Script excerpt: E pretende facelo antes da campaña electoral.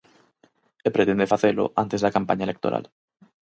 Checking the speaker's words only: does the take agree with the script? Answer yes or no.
yes